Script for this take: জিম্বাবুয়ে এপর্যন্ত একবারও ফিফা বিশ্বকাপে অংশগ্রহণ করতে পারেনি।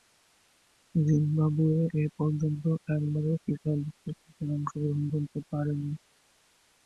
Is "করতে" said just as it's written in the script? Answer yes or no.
yes